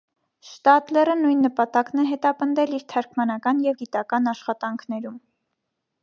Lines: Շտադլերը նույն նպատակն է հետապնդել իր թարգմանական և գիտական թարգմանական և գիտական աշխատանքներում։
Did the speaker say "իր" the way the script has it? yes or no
yes